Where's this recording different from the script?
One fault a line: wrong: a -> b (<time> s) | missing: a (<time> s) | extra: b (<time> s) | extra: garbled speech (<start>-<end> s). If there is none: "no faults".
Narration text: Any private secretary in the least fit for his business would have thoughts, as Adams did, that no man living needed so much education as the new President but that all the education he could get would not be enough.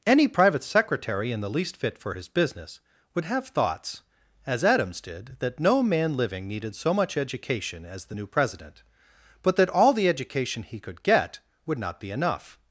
no faults